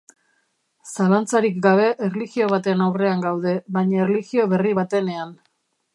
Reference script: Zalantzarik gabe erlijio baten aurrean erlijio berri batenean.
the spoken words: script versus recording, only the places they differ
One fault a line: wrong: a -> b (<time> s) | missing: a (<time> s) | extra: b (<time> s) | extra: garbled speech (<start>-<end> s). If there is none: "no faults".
extra: gaude baina (3.3 s)